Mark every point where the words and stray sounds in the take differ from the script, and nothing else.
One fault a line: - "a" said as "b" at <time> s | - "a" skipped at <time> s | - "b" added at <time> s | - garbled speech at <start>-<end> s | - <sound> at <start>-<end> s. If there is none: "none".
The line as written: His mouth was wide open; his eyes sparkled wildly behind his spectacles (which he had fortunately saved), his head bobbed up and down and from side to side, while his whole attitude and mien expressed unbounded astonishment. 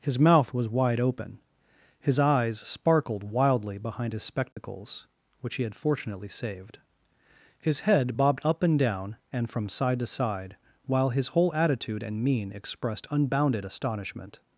- dropout at 4.5-4.6 s